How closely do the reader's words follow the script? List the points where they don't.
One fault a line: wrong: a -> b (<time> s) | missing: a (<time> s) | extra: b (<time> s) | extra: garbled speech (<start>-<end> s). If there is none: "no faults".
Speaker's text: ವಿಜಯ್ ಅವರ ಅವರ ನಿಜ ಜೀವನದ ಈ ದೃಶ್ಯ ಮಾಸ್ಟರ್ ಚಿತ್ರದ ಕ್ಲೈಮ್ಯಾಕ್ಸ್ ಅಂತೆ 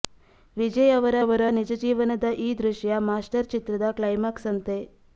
no faults